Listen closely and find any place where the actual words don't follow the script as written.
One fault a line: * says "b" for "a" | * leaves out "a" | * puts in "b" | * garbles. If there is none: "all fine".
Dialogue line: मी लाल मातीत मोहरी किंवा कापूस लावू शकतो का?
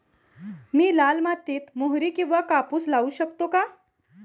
all fine